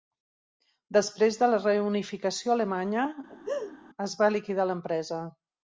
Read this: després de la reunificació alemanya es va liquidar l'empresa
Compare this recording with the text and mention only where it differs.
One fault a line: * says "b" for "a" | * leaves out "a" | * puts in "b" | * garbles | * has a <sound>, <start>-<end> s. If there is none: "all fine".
* has a laugh, 3.3-3.8 s